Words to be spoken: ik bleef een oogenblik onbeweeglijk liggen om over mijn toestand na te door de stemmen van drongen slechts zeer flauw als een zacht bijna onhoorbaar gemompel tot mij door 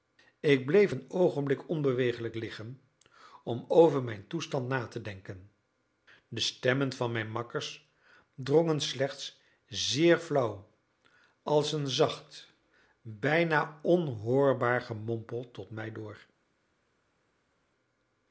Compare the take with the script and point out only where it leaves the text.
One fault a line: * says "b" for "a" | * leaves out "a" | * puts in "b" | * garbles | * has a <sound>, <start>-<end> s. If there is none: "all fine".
* says "denken" for "door"
* puts in "mijn makkers"